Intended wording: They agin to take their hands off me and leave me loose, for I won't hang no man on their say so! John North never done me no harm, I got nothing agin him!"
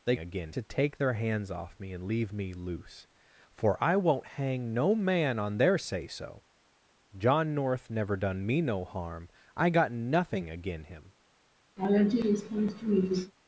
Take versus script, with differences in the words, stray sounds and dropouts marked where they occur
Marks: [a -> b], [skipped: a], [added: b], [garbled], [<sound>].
They agin to take their hands off me and leave me loose, for I won't hang no man on their say so! John North never done me no harm, I got nothing agin him!" [laugh]